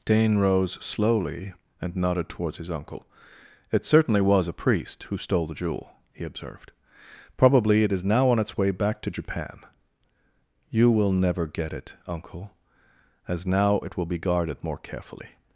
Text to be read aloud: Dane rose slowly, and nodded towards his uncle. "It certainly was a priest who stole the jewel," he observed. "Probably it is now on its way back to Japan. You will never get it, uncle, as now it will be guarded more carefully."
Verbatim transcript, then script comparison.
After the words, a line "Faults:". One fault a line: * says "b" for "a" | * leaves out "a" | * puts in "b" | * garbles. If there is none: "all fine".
Dane rose slowly, and nodded towards his uncle. "It certainly was a priest who stole the jewel," he observed. "Probably it is now on its way back to Japan. You will never get it, uncle, as now it will be guarded more carefully."
Faults:
all fine